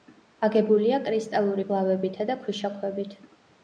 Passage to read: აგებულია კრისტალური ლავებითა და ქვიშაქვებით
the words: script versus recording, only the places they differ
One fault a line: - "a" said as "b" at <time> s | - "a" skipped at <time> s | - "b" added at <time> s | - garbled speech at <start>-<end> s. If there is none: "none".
none